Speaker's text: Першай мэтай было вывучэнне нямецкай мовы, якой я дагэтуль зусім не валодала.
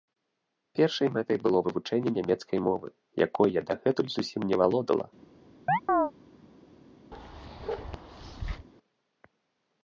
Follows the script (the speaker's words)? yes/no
yes